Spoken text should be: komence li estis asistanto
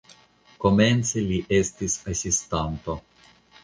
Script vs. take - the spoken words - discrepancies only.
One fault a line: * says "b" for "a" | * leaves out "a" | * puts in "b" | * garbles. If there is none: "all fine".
all fine